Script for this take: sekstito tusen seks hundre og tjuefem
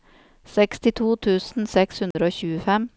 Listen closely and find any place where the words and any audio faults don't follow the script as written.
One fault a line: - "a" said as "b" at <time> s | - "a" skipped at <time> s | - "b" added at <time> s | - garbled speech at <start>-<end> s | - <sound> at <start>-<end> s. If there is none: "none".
- dropout at 2.1-2.1 s